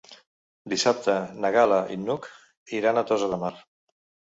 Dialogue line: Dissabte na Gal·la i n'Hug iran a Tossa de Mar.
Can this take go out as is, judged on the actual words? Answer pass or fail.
pass